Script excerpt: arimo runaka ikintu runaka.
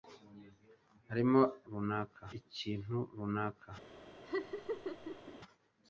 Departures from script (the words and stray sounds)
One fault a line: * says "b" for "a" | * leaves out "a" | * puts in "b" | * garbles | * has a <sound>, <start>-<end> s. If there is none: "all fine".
* has a laugh, 4.2-5.4 s